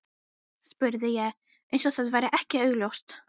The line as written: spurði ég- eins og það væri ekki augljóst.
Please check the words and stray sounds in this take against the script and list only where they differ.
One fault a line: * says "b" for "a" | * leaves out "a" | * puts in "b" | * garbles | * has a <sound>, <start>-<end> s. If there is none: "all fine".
all fine